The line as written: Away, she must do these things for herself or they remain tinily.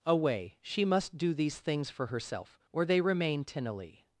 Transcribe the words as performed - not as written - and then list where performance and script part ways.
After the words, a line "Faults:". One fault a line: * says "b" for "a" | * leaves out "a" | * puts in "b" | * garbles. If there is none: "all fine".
Away, she must do these things for herself or they remain tinily.
Faults:
all fine